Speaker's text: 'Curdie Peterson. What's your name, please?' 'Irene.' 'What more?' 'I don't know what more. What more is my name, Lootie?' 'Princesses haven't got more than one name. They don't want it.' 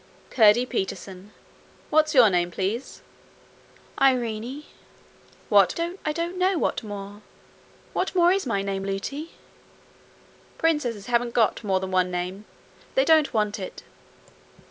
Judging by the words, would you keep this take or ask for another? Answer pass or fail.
fail